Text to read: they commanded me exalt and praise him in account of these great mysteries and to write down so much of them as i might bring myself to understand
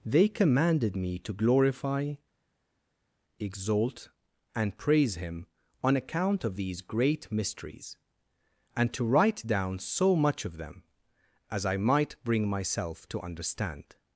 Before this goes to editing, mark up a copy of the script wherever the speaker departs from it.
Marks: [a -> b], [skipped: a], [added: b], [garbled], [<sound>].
they commanded me [added: to glorify] exalt and praise him [in -> on] account of these great mysteries and to write down so much of them as i might bring myself to understand